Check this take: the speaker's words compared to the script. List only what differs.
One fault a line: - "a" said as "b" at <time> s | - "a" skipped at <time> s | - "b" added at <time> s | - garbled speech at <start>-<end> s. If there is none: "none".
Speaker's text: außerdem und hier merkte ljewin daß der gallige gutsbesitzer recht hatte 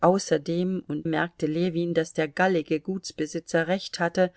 - "hier" skipped at 1.1 s